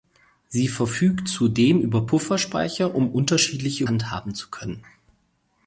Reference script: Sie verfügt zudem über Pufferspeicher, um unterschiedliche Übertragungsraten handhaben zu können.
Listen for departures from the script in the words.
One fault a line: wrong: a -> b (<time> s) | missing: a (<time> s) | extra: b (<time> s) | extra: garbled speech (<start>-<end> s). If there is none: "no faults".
missing: Übertragungsraten (3.8 s)